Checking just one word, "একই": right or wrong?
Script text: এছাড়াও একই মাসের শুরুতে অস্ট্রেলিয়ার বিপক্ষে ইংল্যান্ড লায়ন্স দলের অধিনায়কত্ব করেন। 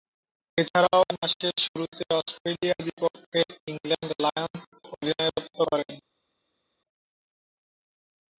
wrong